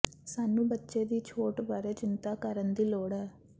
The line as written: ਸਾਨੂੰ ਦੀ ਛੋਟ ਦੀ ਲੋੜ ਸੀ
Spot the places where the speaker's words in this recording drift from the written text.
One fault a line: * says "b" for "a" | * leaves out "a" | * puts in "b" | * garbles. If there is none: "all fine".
* puts in "ਬੱਚੇ"
* puts in "ਬਾਰੇ ਚਿੰਤਾ ਕਰਨ"
* says "ਹੈ" for "ਸੀ"